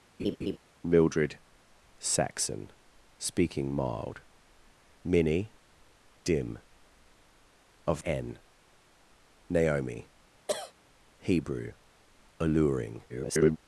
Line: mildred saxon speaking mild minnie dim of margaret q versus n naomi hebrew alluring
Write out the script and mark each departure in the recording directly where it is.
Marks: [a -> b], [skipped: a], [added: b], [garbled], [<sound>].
[laugh] mildred saxon speaking mild minnie dim of [skipped: margaret q versus] n naomi [cough] hebrew alluring [garbled]